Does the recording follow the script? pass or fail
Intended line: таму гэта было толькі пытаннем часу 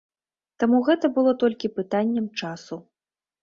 pass